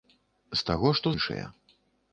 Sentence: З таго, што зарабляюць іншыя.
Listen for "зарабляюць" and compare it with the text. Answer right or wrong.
wrong